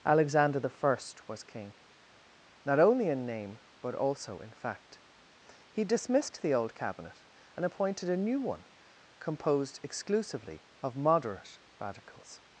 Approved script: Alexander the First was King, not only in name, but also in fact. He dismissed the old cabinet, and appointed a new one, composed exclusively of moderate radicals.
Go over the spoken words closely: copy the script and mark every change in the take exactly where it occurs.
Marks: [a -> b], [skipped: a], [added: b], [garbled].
Alexander the First was King, not only in name, but also in fact. He dismissed the old cabinet, and appointed a new one, composed exclusively of moderate radicals.